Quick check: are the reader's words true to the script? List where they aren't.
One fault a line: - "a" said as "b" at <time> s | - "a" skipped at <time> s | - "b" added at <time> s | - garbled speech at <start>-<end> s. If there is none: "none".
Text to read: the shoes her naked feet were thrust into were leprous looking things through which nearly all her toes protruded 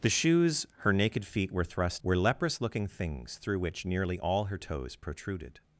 - "into" skipped at 2.0 s